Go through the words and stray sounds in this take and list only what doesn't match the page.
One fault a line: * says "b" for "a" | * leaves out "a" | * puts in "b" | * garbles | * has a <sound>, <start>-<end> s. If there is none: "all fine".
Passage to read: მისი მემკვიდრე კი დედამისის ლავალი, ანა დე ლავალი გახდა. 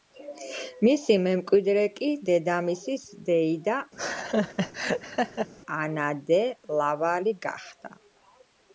* says "დეიდა" for "ლავალი"
* has a laugh, 4.0-5.5 s